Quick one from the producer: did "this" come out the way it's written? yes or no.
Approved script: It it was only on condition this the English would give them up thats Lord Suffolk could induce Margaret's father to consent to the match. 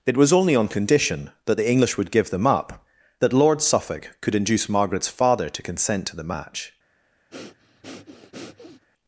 no